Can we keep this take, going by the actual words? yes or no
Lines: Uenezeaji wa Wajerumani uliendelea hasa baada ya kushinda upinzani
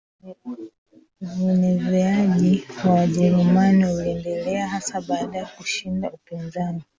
yes